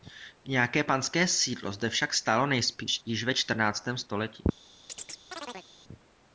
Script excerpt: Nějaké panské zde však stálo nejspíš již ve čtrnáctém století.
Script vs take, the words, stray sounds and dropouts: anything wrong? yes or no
yes